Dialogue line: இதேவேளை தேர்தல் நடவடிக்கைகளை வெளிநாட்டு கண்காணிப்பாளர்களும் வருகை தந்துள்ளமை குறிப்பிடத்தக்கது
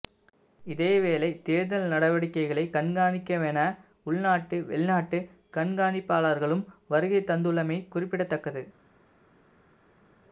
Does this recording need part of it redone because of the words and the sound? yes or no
yes